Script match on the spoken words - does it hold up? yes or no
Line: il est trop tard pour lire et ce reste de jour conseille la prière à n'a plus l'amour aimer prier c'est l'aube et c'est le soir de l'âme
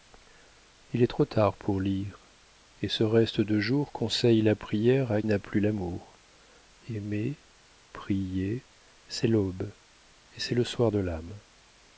yes